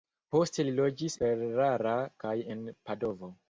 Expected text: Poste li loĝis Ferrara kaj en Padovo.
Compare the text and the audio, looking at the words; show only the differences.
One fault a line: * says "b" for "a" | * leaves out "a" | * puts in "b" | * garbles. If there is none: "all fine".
all fine